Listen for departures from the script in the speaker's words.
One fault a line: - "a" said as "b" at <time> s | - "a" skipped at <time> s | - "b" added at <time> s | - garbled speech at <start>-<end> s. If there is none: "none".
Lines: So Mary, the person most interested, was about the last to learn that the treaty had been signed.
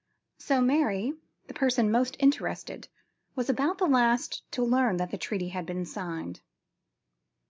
none